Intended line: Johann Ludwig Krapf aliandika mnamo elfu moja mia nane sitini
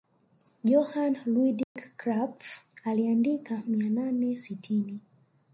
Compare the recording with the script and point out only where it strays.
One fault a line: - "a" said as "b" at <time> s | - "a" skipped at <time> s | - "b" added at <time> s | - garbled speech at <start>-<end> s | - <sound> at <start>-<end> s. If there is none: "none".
- dropout at 1.6-1.8 s
- "mnamo elfu moja" skipped at 3.6 s